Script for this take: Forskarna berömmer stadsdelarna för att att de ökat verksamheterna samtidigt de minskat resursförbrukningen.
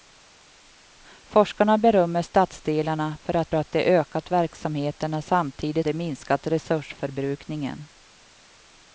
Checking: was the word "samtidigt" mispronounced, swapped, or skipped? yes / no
no